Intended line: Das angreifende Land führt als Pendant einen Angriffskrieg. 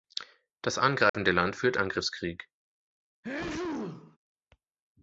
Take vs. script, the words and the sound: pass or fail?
fail